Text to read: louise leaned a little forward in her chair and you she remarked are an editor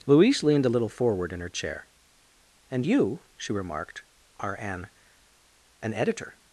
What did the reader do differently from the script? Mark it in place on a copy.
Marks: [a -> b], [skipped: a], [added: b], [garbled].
louise leaned a little forward in her chair and you she remarked are an [added: an] editor